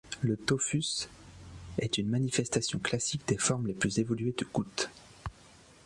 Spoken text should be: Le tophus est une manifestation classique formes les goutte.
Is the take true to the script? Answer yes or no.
no